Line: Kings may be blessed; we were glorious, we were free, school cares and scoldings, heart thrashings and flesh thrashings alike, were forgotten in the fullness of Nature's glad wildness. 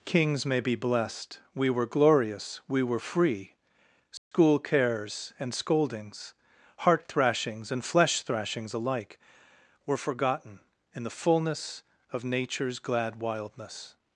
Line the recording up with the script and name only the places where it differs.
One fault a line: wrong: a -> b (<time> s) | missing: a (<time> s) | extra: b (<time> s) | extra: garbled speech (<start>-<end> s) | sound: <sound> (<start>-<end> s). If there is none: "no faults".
sound: dropout (4.2-4.3 s)